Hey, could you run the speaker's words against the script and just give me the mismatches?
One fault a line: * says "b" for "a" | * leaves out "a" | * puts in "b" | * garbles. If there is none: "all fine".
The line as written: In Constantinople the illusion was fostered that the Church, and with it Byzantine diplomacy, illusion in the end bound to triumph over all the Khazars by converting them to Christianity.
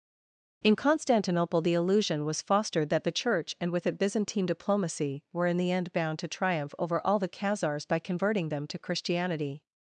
* says "were" for "illusion"